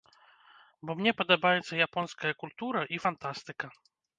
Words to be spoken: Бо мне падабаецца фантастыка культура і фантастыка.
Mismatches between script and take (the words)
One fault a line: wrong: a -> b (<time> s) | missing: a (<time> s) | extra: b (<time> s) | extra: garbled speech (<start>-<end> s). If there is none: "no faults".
wrong: фантастыка -> японская (1.9 s)